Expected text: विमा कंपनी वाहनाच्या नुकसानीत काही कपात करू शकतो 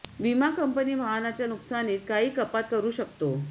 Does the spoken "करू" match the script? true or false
true